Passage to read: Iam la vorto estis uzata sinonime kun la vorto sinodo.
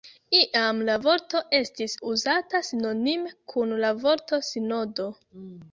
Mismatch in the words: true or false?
false